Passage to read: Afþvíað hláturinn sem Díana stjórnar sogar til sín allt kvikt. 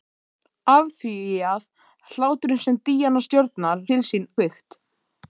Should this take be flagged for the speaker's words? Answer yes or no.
yes